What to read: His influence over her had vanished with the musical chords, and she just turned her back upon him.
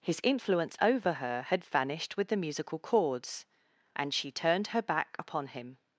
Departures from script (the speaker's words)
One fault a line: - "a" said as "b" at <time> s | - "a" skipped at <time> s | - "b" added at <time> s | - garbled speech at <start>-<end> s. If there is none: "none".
- "just" skipped at 4.3 s